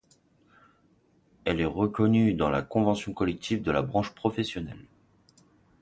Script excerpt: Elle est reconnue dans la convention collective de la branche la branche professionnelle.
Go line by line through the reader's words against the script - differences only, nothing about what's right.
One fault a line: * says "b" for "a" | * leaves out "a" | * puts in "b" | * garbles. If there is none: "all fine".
* leaves out "la branche"